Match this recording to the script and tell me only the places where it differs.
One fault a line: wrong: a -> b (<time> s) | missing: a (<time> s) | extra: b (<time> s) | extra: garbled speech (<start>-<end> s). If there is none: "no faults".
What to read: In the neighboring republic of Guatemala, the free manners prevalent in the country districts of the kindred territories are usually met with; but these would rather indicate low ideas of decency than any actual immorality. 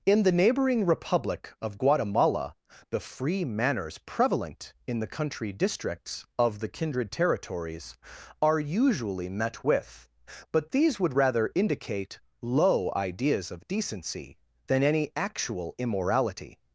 no faults